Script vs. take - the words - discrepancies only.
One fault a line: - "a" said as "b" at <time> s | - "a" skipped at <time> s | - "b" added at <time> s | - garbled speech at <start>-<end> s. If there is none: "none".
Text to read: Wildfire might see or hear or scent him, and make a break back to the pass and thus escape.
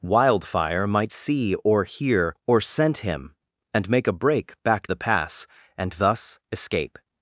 - "to" skipped at 4.9 s